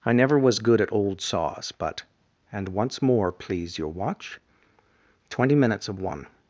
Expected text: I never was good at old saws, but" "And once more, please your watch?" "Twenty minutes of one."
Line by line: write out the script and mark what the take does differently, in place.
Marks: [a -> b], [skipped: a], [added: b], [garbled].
I never was good at old saws, but" "And once more, please your watch?" "Twenty minutes of one."